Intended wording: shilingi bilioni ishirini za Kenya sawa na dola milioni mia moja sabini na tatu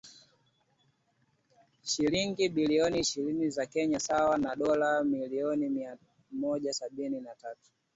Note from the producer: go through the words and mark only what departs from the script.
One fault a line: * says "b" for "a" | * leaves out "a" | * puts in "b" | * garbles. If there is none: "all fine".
all fine